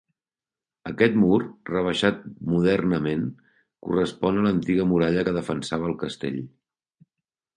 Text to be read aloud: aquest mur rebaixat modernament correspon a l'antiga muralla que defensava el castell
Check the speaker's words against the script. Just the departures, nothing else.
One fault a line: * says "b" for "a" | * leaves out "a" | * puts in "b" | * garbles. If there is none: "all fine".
all fine